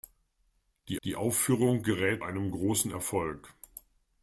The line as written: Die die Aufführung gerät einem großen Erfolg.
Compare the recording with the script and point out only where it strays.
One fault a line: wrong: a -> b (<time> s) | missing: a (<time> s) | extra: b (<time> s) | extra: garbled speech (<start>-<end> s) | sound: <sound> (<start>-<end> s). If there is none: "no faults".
no faults